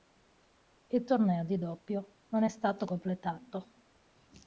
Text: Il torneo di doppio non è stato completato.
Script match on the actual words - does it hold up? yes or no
yes